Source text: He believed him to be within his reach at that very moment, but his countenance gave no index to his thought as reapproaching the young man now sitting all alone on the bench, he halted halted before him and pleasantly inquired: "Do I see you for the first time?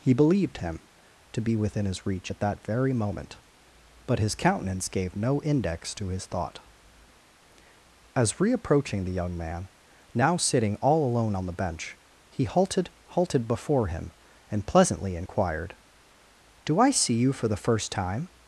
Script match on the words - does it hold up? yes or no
yes